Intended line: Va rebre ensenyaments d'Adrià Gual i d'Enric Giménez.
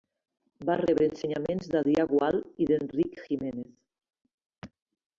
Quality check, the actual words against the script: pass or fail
pass